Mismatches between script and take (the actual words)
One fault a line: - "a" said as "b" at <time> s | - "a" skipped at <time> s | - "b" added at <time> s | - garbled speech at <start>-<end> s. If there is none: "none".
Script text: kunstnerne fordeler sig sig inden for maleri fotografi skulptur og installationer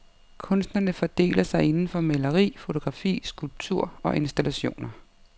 - "sig" skipped at 1.6 s